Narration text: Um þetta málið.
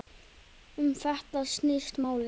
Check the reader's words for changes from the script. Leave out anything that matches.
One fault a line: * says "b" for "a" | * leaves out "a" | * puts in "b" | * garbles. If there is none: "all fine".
* puts in "snýst"